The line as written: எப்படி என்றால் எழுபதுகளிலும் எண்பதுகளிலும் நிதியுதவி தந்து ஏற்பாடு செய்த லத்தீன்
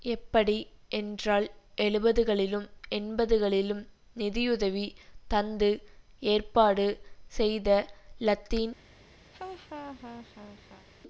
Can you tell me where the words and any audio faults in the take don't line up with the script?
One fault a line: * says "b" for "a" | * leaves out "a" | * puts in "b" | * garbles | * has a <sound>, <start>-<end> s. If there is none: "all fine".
* has a laugh, 9.3-10.9 s